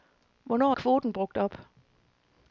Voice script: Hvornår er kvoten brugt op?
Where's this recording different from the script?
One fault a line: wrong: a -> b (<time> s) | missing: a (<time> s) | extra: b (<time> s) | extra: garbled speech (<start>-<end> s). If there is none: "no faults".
no faults